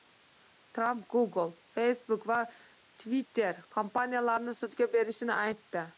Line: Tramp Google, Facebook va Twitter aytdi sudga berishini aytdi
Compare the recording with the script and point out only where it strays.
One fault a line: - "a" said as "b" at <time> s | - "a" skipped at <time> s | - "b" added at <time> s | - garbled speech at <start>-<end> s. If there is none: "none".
- "aytdi" said as "kompaniyalarini" at 3.8 s